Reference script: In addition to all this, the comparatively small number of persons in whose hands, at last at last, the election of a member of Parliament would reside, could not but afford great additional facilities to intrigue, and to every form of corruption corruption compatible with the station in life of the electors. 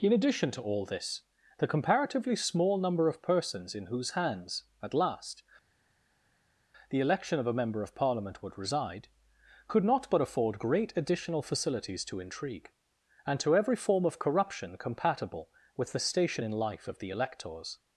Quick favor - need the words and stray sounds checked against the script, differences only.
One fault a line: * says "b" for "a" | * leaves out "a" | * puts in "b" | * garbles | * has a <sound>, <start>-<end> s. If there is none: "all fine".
* leaves out "at last"
* leaves out "corruption"